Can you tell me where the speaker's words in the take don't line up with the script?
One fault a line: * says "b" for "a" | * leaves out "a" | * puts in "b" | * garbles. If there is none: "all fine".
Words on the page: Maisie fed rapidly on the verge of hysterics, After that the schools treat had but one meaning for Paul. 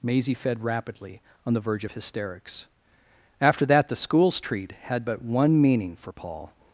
all fine